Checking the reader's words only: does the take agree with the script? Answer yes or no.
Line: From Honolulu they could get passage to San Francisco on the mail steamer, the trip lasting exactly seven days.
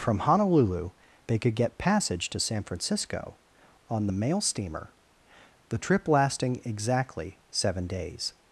yes